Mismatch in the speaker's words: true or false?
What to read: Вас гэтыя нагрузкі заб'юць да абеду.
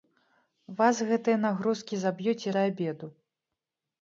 false